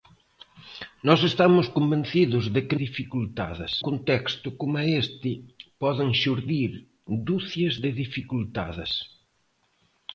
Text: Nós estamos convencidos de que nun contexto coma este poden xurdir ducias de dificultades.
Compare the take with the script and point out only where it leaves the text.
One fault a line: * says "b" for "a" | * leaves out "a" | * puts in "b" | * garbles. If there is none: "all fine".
* says "dificultades" for "nun"